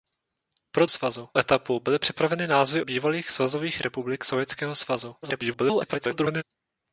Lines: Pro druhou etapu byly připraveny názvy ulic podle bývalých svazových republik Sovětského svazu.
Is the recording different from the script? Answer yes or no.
yes